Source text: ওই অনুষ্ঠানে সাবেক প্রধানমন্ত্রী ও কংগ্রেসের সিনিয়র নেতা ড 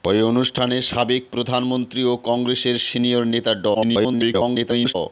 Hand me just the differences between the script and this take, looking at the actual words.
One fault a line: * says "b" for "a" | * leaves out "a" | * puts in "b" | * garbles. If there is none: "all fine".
* garbles